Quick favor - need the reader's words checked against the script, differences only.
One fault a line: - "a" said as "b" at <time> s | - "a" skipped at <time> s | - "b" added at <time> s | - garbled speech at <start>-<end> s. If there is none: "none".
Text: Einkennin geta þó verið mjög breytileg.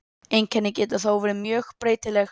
none